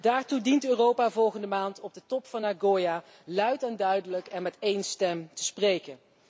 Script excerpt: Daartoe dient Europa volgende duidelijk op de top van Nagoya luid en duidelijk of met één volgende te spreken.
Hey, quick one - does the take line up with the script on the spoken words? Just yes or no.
no